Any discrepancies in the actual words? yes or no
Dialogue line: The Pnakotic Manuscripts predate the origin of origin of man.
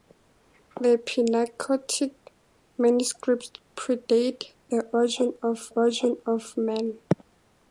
no